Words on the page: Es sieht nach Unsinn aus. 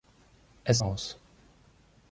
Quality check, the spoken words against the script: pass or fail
fail